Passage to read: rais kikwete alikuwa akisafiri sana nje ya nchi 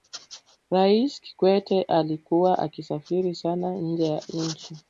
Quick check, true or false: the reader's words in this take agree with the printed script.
true